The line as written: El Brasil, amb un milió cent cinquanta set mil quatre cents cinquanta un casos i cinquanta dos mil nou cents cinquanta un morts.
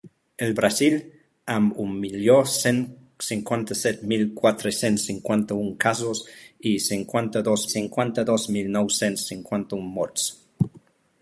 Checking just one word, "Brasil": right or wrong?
right